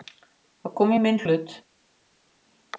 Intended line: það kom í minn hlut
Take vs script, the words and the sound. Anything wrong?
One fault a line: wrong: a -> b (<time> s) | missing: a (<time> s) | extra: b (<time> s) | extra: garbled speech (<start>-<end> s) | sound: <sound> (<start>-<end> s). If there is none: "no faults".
no faults